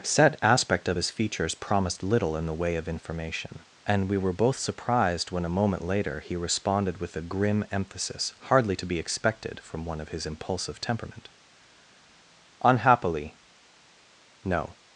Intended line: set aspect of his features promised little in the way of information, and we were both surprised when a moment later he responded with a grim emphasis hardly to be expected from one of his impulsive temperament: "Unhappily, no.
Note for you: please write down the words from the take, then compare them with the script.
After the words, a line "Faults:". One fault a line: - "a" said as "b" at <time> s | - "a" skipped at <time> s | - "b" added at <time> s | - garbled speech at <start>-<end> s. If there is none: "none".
set aspect of his features promised little in the way of information, and we were both surprised when a moment later he responded with a grim emphasis hardly to be expected from one of his impulsive temperament: "Unhappily, no.
Faults:
none